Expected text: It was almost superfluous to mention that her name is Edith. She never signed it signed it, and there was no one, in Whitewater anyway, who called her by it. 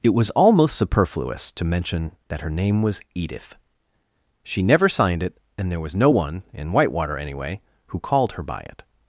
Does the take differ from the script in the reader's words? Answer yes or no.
yes